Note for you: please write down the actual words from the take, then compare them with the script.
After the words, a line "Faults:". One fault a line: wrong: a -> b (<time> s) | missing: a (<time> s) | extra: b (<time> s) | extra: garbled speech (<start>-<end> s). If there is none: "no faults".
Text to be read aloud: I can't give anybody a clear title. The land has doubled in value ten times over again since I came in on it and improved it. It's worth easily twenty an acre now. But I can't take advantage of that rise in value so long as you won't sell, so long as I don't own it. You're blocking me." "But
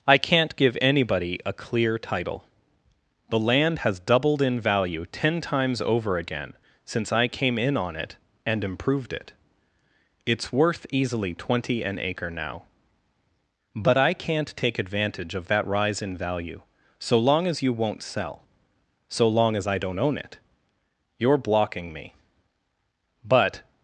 I can't give anybody a clear title. The land has doubled in value ten times over again since I came in on it and improved it. It's worth easily twenty an acre now. But I can't take advantage of that rise in value so long as you won't sell, so long as I don't own it. You're blocking me." "But
Faults:
no faults